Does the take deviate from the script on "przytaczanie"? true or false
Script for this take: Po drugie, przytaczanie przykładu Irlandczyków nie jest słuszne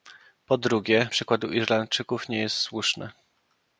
true